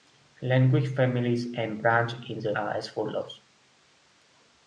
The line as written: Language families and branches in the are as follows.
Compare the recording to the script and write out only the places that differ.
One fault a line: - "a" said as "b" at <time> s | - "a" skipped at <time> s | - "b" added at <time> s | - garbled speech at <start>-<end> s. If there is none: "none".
none